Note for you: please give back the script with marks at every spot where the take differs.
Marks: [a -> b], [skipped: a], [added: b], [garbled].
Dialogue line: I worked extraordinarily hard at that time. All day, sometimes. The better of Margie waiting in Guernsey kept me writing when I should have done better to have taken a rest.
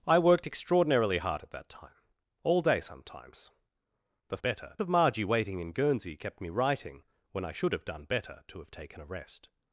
I worked extraordinarily hard at that time. All day, sometimes. The better of Margie waiting in Guernsey kept me writing when I should have done better to have taken a rest.